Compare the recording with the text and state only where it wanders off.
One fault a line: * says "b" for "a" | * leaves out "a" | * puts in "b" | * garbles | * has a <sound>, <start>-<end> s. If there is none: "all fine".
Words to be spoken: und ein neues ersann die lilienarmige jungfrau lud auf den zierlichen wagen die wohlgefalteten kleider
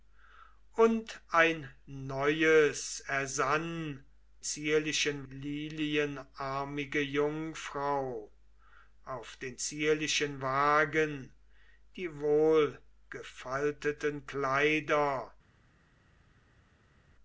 * says "zierlichen" for "die"
* leaves out "lud"